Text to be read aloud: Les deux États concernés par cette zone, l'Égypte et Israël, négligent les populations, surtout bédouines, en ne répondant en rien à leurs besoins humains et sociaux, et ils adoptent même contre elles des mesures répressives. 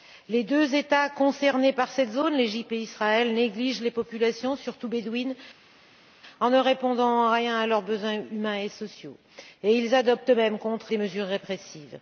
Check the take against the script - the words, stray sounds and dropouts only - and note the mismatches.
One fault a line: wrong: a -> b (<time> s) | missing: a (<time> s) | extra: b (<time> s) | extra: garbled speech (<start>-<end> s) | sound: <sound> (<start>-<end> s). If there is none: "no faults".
missing: elles (10.9 s)